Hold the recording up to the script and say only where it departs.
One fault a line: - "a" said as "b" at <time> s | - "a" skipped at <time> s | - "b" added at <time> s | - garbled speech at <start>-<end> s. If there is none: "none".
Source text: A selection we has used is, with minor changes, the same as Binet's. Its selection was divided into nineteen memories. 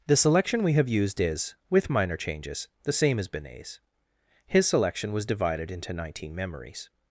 - "A" said as "The" at 0.1 s
- "has" said as "have" at 0.7 s
- "Its" said as "His" at 4.5 s